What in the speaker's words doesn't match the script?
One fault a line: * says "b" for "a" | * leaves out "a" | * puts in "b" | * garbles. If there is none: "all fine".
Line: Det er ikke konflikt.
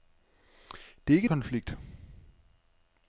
all fine